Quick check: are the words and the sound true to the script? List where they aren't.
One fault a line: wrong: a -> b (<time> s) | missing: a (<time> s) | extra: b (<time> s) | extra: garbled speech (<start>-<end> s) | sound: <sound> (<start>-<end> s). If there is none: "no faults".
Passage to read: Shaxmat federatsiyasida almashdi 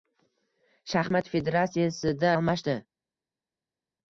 no faults